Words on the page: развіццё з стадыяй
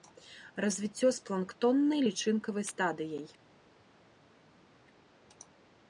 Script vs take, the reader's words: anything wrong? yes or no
yes